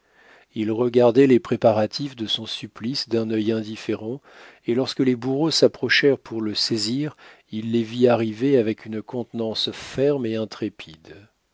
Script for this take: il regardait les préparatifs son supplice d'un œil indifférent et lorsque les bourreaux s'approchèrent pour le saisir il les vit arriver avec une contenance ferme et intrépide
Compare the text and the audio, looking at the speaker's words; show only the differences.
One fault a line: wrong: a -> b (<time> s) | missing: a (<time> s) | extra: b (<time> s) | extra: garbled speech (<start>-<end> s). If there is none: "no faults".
extra: de (2.1 s)